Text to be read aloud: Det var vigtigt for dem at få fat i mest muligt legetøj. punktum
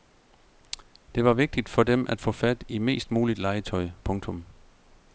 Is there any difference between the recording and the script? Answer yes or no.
no